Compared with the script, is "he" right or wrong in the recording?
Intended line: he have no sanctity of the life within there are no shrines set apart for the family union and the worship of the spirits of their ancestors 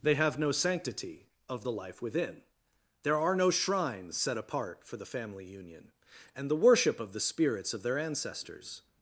wrong